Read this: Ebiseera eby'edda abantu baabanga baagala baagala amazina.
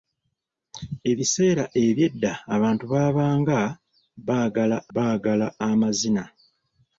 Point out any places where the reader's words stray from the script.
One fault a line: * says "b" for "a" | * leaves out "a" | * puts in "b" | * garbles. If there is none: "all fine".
all fine